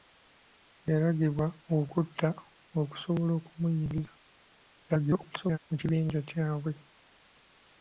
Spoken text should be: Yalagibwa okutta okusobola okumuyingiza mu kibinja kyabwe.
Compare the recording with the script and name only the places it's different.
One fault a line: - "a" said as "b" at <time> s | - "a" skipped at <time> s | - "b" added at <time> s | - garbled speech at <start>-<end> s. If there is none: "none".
- garbled speech at 4.9-5.6 s